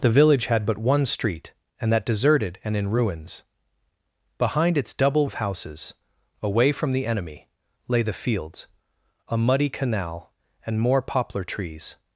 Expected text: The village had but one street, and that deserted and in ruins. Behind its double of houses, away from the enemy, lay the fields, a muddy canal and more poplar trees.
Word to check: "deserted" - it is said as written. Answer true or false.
true